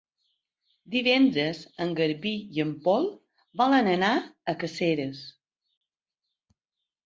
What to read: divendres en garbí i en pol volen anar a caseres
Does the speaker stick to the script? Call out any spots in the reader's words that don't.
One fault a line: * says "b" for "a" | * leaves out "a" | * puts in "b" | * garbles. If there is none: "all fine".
all fine